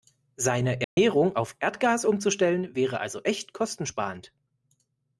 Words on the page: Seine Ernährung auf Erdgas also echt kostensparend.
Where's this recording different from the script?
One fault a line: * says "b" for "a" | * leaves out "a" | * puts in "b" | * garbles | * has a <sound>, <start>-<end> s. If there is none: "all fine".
* has a dropout, 0.8-1.0 s
* puts in "umzustellen wäre"